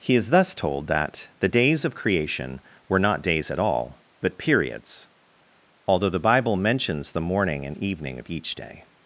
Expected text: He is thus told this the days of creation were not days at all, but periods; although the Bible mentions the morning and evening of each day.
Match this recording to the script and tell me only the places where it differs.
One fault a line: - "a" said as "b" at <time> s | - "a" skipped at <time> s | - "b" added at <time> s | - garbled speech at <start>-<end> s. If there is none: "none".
- "this" said as "that" at 0.9 s